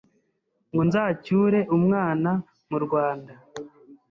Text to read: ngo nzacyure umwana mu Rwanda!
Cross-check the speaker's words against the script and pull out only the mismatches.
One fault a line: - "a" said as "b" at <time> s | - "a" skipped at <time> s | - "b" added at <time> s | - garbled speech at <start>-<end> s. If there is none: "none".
none